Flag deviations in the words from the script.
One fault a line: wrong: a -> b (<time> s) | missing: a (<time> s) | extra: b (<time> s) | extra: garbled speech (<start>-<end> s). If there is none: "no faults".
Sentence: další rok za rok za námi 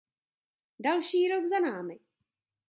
missing: rok za (1.6 s)